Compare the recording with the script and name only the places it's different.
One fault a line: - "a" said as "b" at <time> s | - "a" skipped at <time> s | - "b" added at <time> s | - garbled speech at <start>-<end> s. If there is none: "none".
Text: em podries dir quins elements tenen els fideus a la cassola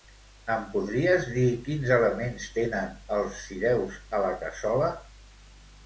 none